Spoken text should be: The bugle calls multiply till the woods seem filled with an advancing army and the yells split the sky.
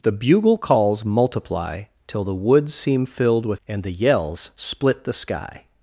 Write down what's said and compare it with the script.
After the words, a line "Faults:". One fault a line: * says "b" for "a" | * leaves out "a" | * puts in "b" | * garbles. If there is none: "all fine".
The bugle calls multiply till the woods seem filled with and the yells split the sky.
Faults:
* leaves out "an advancing army"